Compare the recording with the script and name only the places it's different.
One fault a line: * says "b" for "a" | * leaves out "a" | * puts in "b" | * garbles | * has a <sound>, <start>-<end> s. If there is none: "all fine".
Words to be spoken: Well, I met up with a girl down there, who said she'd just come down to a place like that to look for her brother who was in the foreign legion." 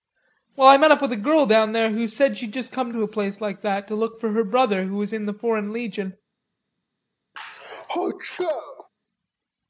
* leaves out "down"
* has a sneeze, 7.3-8.9 s